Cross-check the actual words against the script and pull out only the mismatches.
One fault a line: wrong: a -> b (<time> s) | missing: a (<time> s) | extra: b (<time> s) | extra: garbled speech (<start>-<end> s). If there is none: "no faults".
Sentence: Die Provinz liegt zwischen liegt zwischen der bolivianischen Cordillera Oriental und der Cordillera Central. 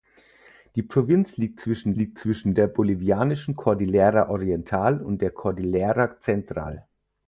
no faults